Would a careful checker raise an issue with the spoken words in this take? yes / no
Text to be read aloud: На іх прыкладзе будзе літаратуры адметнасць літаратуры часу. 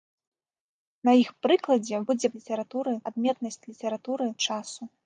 no